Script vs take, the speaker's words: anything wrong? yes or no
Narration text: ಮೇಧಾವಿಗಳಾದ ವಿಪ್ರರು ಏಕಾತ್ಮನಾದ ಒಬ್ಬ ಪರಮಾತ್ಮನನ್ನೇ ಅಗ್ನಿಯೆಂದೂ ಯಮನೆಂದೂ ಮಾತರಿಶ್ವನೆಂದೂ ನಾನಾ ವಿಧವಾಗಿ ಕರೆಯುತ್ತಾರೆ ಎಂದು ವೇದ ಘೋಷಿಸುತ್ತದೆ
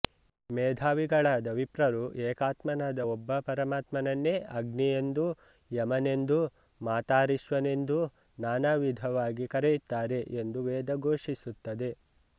no